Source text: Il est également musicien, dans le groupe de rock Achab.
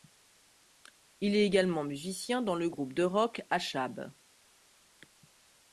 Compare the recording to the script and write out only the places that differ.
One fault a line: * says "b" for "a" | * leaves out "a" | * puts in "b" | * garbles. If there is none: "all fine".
all fine